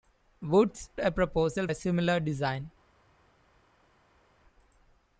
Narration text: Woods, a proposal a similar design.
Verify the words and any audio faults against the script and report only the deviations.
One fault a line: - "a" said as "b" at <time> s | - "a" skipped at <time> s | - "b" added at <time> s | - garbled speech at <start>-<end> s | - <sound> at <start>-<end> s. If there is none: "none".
none